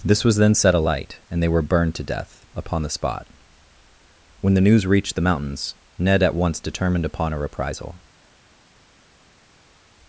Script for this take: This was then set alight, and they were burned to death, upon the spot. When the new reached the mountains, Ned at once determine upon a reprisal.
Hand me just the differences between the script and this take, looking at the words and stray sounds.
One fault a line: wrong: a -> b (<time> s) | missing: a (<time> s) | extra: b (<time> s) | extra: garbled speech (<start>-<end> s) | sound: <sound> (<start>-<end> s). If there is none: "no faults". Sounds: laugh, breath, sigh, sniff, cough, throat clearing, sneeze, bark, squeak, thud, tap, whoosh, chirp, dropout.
wrong: new -> news (4.6 s)
wrong: determine -> determined (6.6 s)